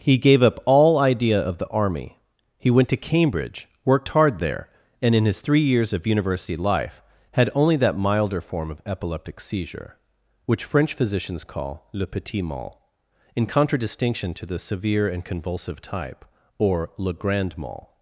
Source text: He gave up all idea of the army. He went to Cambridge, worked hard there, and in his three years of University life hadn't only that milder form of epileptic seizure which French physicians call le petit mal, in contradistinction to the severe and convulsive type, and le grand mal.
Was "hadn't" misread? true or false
true